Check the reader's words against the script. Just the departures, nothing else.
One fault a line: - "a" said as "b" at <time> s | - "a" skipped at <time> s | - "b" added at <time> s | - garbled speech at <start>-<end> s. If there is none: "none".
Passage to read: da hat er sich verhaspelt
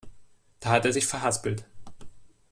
none